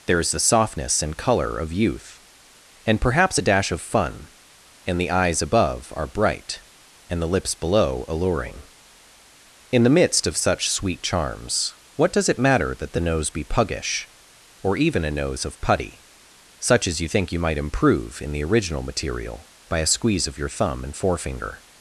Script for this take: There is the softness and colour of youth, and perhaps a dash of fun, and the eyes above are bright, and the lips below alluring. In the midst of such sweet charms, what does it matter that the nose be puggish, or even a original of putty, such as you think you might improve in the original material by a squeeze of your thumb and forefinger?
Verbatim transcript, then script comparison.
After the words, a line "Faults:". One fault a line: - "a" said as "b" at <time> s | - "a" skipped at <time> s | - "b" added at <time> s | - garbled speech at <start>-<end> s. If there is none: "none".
There is the softness and colour of youth, and perhaps a dash of fun, and the eyes above are bright, and the lips below alluring. In the midst of such sweet charms, what does it matter that the nose be puggish, or even a nose of putty, such as you think you might improve in the original material by a squeeze of your thumb and forefinger?
Faults:
- "original" said as "nose" at 15.1 s